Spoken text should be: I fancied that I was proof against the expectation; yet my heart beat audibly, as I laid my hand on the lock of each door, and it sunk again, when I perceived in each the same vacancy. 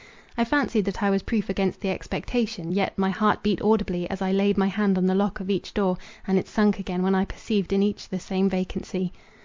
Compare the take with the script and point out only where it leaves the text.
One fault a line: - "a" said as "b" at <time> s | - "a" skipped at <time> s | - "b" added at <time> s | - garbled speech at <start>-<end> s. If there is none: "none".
none